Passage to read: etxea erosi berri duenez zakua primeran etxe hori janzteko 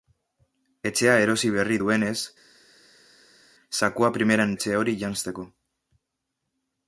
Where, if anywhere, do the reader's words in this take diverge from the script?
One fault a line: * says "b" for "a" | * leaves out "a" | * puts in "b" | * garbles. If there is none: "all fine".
all fine